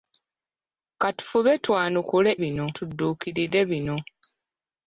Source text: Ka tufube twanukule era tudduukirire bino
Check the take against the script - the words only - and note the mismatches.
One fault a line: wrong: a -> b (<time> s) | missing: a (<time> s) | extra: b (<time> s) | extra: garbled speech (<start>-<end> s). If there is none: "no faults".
wrong: era -> bino (2.4 s)